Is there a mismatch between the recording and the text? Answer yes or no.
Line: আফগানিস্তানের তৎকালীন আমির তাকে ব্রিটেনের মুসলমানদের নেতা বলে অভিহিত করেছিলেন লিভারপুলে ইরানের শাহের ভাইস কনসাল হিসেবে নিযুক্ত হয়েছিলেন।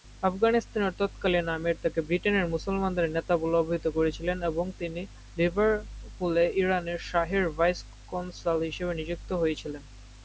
yes